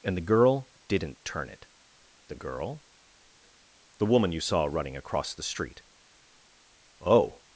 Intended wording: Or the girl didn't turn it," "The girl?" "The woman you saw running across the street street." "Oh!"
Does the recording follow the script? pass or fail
fail